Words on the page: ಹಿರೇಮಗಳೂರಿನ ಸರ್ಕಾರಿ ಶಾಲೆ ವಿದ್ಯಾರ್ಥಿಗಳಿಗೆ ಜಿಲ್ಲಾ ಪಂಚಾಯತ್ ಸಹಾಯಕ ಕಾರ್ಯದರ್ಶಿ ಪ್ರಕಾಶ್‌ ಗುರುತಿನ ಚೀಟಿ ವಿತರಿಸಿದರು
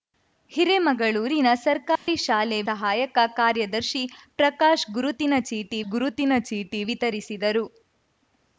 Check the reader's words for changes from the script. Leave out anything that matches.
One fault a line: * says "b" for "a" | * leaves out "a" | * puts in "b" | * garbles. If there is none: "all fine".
* leaves out "ವಿದ್ಯಾರ್ಥಿಗಳಿಗೆ ಜಿಲ್ಲಾ ಪಂಚಾಯತ್"
* puts in "ಗುರುತಿನ ಚೀಟಿ"